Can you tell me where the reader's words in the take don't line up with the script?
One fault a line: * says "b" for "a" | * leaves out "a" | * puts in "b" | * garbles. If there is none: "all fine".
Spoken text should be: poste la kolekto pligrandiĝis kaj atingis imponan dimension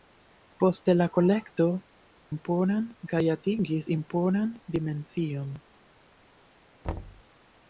* says "imponan" for "pligrandiĝis"